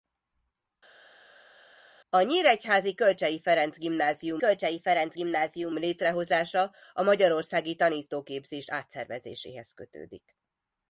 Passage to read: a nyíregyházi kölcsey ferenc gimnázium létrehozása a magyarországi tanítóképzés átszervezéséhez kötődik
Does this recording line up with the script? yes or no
no